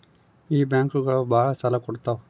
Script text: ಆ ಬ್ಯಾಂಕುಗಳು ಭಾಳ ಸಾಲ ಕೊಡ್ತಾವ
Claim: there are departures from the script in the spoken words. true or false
true